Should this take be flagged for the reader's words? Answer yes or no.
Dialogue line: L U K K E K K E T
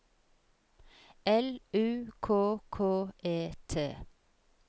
yes